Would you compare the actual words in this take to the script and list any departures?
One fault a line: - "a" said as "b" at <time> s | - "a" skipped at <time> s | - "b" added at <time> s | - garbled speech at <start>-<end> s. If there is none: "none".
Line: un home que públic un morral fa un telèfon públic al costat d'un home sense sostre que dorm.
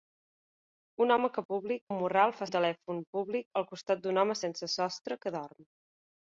none